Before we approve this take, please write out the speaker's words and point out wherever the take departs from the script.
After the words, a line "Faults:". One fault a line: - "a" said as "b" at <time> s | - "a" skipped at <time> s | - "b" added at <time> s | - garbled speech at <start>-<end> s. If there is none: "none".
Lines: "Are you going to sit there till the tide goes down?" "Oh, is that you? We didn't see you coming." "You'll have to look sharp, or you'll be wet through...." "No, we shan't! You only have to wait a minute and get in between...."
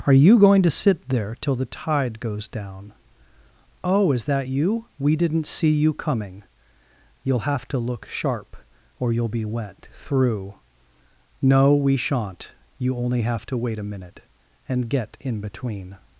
"Are you going to sit there till the tide goes down?" "Oh, is that you? We didn't see you coming." "You'll have to look sharp, or you'll be wet through...." "No, we shan't! You only have to wait a minute and get in between...."
Faults:
none